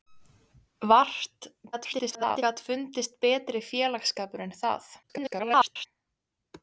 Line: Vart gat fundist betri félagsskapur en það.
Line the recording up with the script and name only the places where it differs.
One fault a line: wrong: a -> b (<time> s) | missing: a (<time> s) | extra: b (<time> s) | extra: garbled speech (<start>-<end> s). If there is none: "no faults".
extra: garbled speech (1.7-2.4 s)
extra: garbled speech (5.0-5.9 s)